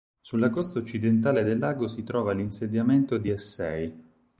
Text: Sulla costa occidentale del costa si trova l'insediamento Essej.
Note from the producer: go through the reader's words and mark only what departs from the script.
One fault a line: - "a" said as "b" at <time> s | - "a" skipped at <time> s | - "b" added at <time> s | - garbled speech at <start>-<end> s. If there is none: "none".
- "costa" said as "lago" at 1.6 s
- "di" added at 3.2 s